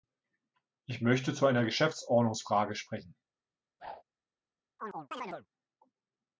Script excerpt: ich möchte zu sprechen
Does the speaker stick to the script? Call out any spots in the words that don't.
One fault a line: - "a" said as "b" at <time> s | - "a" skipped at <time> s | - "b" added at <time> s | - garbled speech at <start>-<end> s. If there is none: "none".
- "einer geschäftsordnungsfrage" added at 1.4 s